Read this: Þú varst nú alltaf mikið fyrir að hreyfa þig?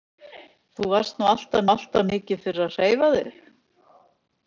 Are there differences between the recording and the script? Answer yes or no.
yes